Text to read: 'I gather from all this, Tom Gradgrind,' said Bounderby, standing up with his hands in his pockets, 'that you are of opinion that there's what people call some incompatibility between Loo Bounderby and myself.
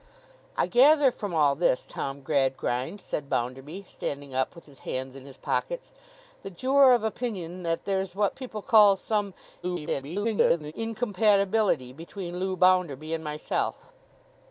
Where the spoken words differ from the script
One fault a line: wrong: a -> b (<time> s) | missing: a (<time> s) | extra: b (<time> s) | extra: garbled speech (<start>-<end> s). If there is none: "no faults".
extra: garbled speech (9.6-10.7 s)